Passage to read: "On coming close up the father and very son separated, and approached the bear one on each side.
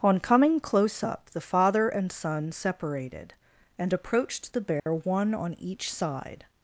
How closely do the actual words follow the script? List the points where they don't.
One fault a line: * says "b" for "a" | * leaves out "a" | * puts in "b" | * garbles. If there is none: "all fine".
* leaves out "very"